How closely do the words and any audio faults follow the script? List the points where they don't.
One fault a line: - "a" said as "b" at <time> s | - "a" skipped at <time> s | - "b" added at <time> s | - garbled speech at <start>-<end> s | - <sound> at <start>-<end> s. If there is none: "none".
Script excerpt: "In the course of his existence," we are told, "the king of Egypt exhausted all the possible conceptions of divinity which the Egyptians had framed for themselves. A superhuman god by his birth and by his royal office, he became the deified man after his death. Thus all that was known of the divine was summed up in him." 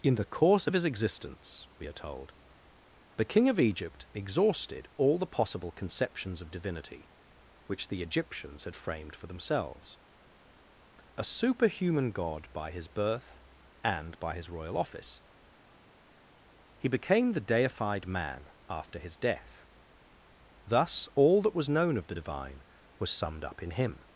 none